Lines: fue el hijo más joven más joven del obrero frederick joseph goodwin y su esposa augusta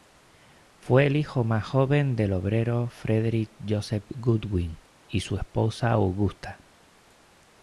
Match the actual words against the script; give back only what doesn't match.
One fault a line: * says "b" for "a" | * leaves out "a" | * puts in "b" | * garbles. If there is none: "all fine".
* leaves out "más joven"